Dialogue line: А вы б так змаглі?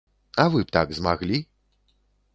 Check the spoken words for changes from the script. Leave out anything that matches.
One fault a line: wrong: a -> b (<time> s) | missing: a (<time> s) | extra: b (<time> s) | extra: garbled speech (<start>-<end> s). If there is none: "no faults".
no faults